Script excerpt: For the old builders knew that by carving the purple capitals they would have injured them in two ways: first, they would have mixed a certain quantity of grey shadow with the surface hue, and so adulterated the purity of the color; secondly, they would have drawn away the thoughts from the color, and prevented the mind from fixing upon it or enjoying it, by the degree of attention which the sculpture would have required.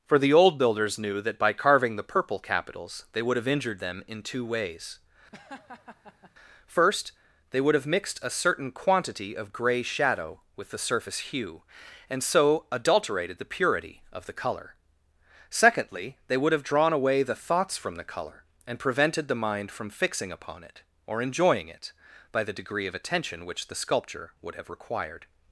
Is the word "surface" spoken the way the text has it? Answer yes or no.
yes